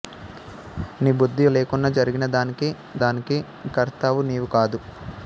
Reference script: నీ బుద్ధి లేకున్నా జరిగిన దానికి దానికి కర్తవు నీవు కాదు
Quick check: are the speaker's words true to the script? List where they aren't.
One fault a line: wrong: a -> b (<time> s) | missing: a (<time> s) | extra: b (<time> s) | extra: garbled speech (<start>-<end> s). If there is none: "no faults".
no faults